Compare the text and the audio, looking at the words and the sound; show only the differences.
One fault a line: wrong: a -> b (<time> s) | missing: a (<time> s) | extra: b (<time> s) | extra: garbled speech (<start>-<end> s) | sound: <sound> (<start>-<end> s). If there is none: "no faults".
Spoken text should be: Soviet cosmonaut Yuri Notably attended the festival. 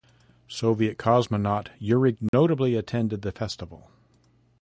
sound: dropout (2.3-2.3 s)